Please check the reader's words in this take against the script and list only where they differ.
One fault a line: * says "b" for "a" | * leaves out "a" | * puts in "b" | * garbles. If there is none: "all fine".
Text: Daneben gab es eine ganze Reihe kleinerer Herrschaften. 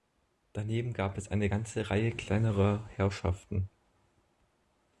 all fine